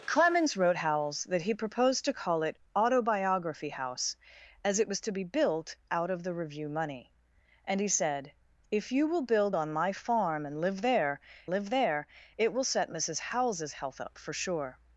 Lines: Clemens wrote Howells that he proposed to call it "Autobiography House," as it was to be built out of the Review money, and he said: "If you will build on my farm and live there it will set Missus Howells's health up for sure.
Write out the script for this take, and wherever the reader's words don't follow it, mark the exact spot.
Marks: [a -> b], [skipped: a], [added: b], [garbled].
Clemens wrote Howells that he proposed to call it "Autobiography House," as it was to be built out of the Review money, and he said: "If you will build on my farm and live there [added: live there] it will set Missus Howells's health up for sure.